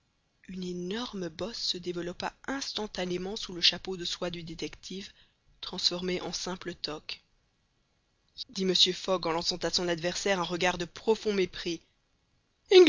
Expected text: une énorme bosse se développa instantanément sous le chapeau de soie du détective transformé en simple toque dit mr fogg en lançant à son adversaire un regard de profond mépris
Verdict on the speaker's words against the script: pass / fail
pass